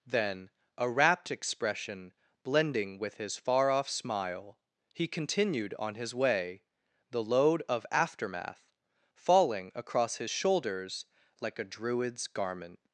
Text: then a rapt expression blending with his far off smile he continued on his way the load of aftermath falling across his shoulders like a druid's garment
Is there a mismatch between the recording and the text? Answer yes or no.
no